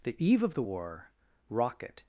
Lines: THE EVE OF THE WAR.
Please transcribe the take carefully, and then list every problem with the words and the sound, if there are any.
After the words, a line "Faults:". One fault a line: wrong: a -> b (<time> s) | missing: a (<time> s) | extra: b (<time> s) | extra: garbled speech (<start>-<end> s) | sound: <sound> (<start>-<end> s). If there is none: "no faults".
THE EVE OF THE WAR. rocket
Faults:
extra: rocket (1.5 s)